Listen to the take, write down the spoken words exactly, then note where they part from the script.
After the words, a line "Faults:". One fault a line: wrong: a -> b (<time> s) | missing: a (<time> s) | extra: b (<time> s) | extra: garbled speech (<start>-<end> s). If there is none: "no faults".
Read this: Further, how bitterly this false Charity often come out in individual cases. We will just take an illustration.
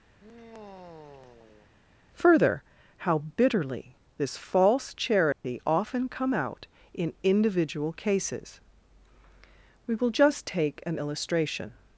Further, how bitterly this false Charity often come out in individual cases. We will just take an illustration.
Faults:
no faults